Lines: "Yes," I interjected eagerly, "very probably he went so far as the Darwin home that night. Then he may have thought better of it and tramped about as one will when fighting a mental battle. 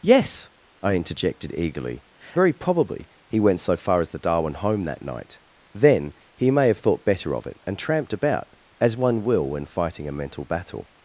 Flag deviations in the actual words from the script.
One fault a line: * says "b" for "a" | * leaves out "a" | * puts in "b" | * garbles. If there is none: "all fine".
all fine